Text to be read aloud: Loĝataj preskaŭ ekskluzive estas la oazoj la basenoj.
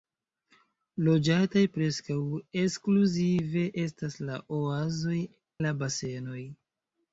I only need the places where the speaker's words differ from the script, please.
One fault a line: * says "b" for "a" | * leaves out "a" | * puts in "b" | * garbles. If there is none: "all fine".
all fine